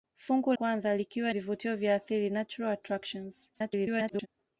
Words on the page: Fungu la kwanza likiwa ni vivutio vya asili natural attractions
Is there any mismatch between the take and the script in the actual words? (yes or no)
yes